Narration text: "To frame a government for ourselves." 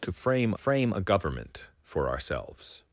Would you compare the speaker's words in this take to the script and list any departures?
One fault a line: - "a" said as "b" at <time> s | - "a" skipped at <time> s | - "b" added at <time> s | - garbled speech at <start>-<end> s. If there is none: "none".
- "frame" added at 0.5 s